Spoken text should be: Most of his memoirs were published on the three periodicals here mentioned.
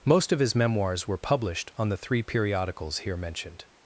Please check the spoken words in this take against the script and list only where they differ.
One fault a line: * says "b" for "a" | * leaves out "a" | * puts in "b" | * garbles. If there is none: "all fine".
all fine